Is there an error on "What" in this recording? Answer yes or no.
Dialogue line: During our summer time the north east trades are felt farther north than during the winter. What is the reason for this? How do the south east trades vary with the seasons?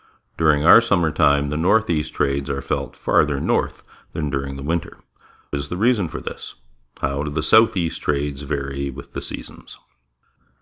yes